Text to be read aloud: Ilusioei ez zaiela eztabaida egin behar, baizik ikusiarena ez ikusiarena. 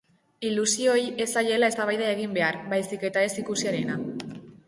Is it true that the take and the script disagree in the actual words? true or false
true